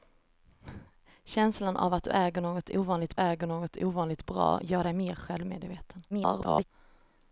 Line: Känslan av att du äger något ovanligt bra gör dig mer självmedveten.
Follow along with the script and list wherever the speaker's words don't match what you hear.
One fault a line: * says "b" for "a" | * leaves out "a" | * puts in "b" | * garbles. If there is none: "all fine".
* puts in "äger något ovanligt"
* garbles